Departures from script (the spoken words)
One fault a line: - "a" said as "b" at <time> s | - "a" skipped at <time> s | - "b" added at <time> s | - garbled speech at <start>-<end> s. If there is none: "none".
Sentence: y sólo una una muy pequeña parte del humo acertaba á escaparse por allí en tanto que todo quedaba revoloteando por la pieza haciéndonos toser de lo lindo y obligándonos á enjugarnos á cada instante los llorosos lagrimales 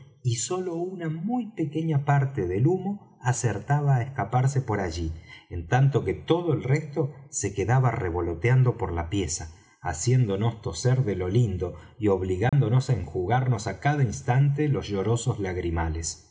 - "una" skipped at 1.1 s
- "el resto se" added at 6.5 s